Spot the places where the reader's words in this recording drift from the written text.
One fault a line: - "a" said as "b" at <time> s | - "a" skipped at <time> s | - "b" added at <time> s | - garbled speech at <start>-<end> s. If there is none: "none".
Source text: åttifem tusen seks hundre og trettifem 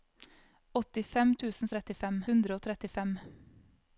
- "seks" said as "trettifem" at 1.8 s